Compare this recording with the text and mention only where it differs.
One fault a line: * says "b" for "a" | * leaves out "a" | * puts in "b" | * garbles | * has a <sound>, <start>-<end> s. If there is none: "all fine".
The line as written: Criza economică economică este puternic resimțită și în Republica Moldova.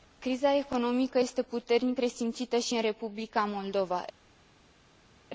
* leaves out "economică"